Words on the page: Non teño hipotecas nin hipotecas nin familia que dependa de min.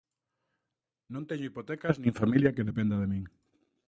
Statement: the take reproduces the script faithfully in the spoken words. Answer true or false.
false